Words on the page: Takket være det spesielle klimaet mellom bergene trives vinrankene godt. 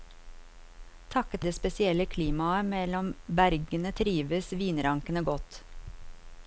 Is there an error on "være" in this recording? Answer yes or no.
yes